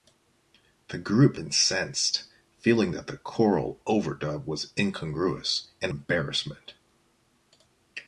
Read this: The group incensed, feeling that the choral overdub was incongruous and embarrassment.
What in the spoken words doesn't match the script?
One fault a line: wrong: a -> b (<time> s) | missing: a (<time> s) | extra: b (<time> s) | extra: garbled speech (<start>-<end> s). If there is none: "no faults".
no faults